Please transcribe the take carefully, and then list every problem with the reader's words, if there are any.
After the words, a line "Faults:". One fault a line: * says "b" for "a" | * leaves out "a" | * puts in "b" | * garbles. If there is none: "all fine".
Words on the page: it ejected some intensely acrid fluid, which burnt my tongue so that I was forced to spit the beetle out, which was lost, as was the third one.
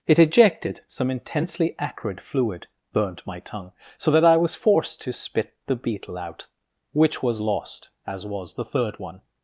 it ejected some intensely acrid fluid, burnt my tongue so that I was forced to spit the beetle out, which was lost, as was the third one.
Faults:
* leaves out "which"